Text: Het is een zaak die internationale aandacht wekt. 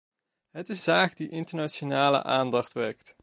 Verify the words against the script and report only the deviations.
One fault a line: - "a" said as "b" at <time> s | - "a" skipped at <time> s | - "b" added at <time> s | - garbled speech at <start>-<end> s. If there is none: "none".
- "een" skipped at 0.8 s